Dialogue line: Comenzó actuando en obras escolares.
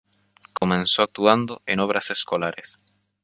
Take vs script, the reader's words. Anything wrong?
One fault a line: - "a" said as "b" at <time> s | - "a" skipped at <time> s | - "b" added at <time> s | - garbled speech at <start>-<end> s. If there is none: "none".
none